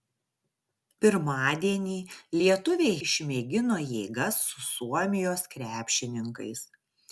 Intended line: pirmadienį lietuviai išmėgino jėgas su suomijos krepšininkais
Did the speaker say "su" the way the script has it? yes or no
yes